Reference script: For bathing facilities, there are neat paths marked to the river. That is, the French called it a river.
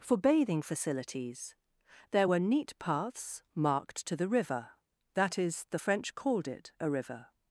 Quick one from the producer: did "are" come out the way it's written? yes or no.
no